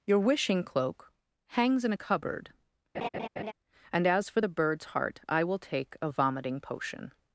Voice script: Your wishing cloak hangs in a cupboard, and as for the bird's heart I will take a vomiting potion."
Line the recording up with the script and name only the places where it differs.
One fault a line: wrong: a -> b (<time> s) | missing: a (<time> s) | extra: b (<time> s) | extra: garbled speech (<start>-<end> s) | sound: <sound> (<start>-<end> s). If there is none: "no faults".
sound: laugh (2.9-3.5 s)